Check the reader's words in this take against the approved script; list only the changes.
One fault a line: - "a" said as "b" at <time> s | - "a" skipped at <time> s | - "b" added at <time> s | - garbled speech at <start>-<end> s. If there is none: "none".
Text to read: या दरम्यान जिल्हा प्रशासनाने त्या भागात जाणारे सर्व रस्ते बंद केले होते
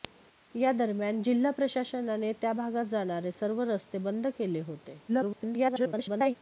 - garbled speech at 5.1-6.4 s